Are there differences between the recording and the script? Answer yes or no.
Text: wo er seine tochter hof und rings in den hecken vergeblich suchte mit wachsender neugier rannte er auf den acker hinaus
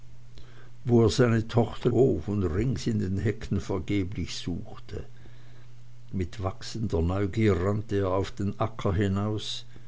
no